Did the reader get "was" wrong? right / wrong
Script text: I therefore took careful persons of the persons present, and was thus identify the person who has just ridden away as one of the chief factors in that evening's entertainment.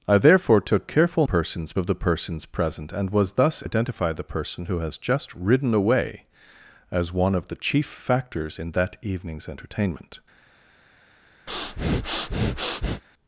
right